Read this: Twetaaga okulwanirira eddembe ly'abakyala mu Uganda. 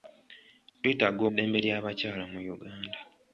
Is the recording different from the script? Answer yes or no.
yes